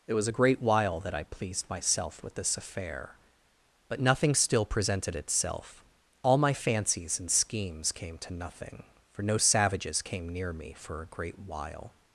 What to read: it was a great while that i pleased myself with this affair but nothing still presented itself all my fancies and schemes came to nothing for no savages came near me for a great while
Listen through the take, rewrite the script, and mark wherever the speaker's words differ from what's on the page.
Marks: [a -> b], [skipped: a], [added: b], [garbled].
it was a great while that i pleased myself with this affair but nothing still presented itself all my fancies and schemes came to nothing for no savages came near me for a great while